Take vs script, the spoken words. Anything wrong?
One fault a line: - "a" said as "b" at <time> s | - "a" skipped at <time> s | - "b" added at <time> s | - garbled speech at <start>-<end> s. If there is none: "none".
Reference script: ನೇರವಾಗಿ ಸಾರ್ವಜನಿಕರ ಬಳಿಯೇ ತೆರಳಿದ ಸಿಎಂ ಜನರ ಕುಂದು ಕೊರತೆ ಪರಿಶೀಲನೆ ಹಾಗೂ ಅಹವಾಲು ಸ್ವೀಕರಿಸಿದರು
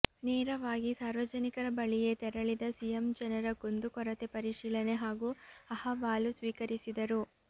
none